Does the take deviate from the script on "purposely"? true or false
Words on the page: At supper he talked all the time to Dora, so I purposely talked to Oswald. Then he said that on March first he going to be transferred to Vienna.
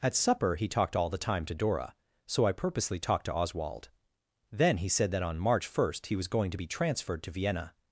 false